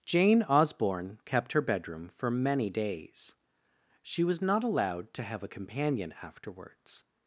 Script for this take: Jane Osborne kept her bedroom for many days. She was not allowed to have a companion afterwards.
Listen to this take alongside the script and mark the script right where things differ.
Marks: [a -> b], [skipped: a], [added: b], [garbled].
Jane Osborne kept her bedroom for many days. She was not allowed to have a companion afterwards.